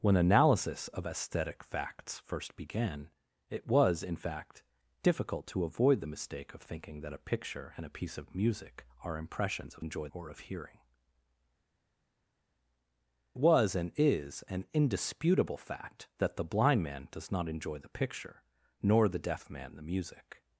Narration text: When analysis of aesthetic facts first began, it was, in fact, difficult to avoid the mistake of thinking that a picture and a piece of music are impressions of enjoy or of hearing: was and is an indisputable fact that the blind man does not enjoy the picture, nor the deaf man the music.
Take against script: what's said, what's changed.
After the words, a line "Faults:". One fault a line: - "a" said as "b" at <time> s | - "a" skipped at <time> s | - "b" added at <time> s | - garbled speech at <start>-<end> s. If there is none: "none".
When analysis of aesthetic facts first began, it was, in fact, difficult to avoid the mistake of thinking that a picture and a piece of music are impressions of enjoy or of hearing: was and is an indisputable fact that the blind man does not enjoy the picture, nor the deaf man the music.
Faults:
none